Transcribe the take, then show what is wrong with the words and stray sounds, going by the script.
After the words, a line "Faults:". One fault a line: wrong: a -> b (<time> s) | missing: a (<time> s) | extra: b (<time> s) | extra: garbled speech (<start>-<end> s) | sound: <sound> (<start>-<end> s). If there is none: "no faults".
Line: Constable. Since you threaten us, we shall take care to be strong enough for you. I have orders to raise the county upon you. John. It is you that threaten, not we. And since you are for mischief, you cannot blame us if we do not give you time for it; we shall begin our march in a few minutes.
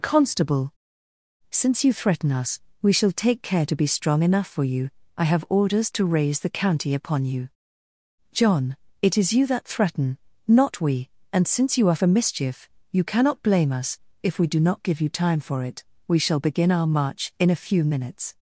Constable. Since you threaten us, we shall take care to be strong enough for you. I have orders to raise the county upon you. John. It is you that threaten, not we. And since you are for mischief, you cannot blame us if we do not give you time for it; we shall begin our march in a few minutes.
Faults:
no faults